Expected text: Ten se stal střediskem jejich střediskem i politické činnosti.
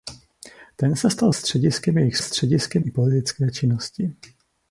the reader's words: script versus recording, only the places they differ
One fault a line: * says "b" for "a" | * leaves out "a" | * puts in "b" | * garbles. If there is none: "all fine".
all fine